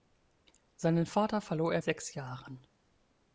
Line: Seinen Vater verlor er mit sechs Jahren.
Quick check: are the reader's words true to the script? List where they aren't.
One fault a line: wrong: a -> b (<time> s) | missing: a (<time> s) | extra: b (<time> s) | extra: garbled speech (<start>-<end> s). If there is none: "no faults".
missing: mit (1.8 s)